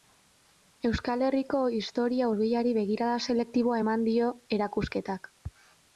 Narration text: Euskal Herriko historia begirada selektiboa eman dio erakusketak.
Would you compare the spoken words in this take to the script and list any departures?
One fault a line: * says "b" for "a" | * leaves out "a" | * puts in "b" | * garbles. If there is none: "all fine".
* puts in "hurbilari"